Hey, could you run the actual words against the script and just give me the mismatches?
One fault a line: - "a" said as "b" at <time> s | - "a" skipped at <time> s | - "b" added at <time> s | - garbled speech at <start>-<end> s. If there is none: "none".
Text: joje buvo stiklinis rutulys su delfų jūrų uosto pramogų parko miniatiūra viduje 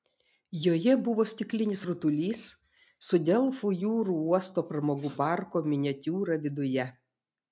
none